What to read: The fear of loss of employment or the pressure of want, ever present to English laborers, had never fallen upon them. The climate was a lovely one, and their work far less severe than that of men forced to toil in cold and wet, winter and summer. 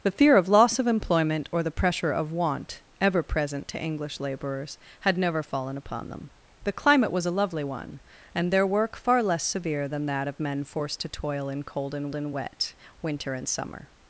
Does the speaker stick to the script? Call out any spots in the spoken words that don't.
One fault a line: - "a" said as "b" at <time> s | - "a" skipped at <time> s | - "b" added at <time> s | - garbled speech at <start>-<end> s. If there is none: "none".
- "and" added at 12.1 s